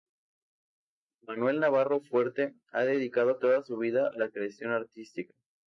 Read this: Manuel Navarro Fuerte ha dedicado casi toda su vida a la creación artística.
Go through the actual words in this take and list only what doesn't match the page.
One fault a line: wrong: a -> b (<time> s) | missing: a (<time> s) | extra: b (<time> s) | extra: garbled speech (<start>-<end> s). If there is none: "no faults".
missing: casi (3.4 s)